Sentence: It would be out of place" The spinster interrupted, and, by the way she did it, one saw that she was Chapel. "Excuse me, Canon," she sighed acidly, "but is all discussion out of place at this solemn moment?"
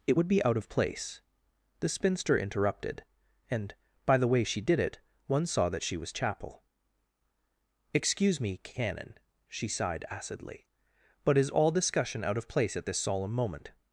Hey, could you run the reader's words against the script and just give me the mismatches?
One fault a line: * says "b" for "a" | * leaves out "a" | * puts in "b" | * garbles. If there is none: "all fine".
all fine